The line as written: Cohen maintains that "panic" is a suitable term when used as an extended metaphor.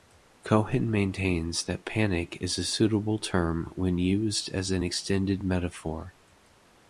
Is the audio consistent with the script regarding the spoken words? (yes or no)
yes